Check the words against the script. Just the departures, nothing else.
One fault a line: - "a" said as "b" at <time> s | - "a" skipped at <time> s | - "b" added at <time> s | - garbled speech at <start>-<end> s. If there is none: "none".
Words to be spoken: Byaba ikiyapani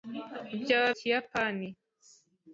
none